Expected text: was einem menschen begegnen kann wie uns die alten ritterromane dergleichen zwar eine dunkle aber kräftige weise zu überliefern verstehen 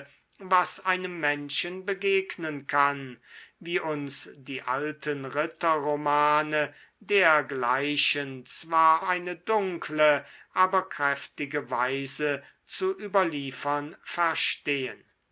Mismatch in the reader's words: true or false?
false